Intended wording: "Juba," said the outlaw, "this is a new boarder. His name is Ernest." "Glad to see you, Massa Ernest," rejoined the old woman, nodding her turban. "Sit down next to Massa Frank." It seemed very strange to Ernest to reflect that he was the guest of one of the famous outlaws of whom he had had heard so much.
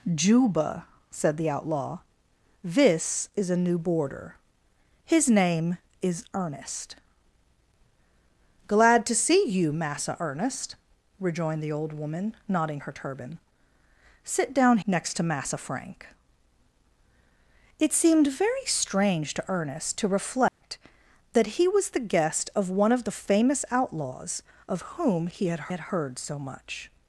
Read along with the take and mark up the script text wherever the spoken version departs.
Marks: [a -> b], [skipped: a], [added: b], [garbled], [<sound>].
"Juba," said the outlaw, "this is a new boarder. His name is Ernest." "Glad to see you, Massa Ernest," rejoined the old woman, nodding her turban. "Sit down next to Massa Frank." It seemed very strange to Ernest to reflect [dropout] that he was the guest of one of the famous outlaws of whom he had had heard so much.